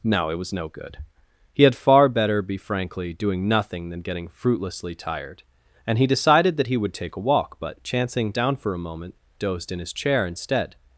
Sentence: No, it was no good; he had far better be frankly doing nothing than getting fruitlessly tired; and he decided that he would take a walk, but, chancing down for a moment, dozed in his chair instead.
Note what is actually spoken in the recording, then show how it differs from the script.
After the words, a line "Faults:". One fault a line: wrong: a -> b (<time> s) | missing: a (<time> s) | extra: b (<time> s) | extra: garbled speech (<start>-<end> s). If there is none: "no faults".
No, it was no good; he had far better be frankly doing nothing than getting fruitlessly tired; and he decided that he would take a walk, but, chancing down for a moment, dozed in his chair instead.
Faults:
no faults